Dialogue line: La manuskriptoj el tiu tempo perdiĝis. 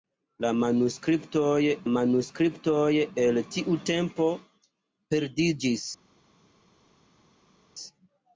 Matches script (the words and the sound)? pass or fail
fail